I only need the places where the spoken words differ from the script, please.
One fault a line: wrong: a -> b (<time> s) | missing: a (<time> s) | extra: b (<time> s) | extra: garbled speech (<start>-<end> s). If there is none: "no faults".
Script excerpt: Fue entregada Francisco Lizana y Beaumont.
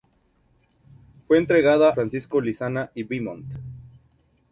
no faults